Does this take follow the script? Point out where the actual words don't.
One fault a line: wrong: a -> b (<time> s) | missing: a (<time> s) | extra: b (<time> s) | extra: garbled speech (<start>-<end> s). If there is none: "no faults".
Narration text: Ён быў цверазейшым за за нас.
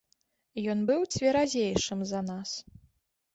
missing: за (2.2 s)